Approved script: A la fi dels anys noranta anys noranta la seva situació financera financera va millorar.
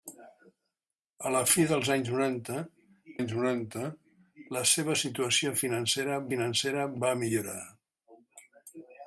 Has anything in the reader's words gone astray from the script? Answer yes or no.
no